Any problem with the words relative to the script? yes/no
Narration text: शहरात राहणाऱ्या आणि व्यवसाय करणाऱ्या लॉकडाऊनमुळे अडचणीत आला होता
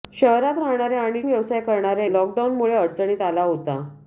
no